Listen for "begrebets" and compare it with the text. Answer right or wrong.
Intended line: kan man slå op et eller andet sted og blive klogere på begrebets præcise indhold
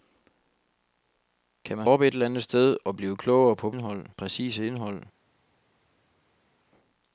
wrong